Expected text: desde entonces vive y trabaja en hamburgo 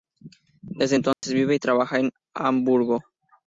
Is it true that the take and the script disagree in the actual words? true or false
false